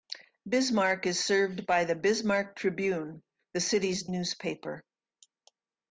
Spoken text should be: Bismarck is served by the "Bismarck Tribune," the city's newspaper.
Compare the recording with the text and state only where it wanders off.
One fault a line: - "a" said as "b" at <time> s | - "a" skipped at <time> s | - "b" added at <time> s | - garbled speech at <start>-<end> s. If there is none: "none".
none